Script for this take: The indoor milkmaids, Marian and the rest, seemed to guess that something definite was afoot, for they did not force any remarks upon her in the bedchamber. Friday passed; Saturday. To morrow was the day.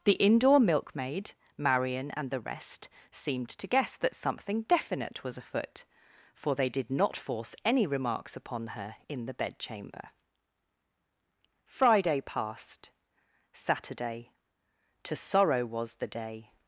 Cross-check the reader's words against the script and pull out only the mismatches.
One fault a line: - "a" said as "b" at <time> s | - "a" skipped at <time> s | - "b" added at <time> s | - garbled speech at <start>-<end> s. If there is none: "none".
- "milkmaids" said as "milkmaid" at 0.6 s
- "morrow" said as "sorrow" at 15.2 s